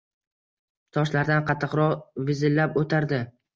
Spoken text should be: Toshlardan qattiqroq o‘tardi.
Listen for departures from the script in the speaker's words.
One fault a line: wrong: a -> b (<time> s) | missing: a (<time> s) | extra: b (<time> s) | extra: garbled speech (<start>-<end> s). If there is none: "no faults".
extra: vizillab (2.3 s)